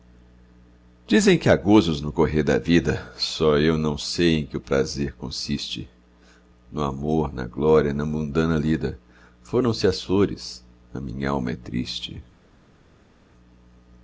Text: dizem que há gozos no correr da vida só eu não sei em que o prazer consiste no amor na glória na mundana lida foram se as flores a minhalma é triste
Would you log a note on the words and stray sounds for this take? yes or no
no